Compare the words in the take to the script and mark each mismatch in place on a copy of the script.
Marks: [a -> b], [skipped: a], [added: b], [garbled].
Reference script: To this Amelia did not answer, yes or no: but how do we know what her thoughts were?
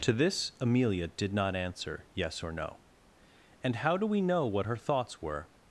To this Amelia did not answer, yes or no: [but -> and] how do we know what her thoughts were?